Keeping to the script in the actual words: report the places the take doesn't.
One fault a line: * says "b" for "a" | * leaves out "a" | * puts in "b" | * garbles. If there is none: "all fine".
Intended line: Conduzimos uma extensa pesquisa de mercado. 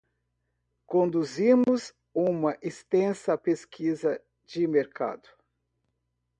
all fine